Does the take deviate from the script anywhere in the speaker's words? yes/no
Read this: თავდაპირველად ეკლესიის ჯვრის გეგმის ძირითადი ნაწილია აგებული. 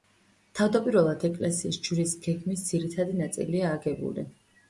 no